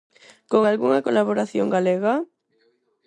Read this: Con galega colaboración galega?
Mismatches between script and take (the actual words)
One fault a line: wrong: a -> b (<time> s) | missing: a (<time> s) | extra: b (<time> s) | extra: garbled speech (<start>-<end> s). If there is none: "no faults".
wrong: galega -> algunha (0.7 s)